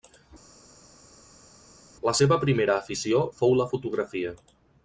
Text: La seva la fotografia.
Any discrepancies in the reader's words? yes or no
yes